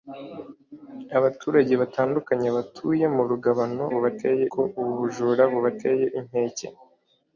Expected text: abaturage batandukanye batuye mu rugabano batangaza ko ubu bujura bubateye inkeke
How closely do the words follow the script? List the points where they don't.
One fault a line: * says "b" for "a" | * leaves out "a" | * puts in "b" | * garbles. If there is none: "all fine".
* says "bubateye" for "batangaza"